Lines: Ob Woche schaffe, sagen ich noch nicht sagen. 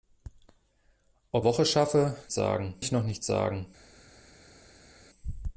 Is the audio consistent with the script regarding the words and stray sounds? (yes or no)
yes